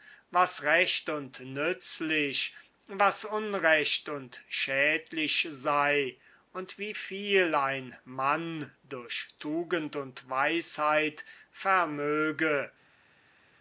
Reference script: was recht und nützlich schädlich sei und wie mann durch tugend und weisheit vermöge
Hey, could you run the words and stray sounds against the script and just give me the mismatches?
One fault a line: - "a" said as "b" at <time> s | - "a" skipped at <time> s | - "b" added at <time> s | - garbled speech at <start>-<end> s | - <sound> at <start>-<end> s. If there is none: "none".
- "was unrecht und" added at 2.9 s
- "viel ein" added at 7.0 s